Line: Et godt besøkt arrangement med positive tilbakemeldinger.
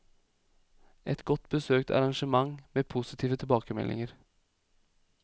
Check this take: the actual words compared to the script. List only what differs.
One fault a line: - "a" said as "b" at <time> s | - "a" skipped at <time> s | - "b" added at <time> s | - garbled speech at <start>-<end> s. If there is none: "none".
none